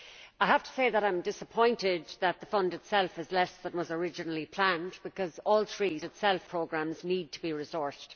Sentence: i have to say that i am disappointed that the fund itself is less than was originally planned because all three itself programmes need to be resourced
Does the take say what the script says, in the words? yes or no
yes